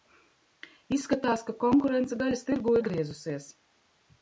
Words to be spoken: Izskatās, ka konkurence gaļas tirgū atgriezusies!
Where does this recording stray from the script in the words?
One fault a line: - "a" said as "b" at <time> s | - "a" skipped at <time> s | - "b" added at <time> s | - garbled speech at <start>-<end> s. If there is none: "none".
none